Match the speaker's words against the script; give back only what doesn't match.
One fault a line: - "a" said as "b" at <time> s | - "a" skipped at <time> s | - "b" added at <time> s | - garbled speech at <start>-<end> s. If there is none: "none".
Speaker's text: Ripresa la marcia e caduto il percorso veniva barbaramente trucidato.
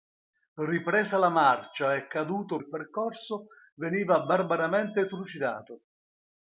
none